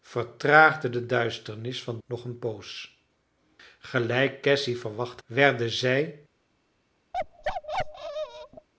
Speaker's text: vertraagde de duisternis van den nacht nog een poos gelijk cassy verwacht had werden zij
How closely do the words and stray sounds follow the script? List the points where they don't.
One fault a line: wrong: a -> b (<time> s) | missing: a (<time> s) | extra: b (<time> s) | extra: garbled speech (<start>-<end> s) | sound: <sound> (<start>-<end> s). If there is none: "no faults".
missing: den nacht (2.0 s)
missing: had (5.2 s)
sound: bark (7.1-8.7 s)